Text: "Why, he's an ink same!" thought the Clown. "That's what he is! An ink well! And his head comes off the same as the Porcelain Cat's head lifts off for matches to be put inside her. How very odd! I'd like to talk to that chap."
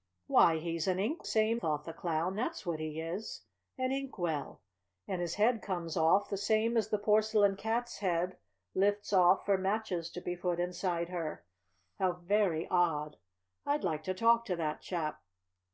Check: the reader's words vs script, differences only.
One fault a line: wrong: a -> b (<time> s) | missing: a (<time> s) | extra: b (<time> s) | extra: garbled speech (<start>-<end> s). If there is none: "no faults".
no faults